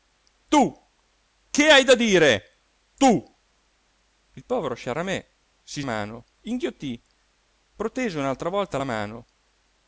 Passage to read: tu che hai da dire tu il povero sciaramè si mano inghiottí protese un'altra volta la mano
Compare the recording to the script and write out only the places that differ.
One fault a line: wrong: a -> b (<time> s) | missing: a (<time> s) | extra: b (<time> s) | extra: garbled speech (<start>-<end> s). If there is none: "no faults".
no faults